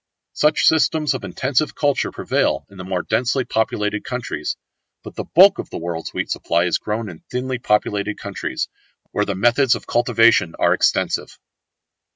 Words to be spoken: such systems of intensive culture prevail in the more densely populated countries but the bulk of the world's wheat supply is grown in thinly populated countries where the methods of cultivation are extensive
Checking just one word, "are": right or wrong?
right